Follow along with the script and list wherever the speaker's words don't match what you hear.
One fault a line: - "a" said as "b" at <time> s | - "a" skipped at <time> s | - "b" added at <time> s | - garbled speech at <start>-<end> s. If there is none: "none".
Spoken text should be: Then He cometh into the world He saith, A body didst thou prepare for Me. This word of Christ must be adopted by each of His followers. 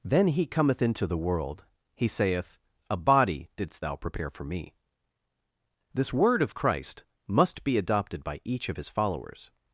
none